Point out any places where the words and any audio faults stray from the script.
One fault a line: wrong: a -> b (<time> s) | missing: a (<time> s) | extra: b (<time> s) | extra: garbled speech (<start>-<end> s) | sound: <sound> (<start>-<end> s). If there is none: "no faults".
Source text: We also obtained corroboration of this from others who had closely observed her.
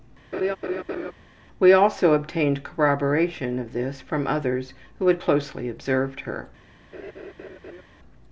sound: laugh (0.3-1.1 s)
sound: laugh (6.9-7.8 s)